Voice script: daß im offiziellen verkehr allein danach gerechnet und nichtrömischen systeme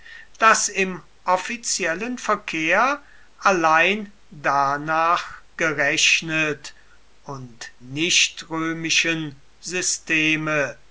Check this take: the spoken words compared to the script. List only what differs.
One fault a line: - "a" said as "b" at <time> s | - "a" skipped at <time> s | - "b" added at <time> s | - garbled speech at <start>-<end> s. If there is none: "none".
none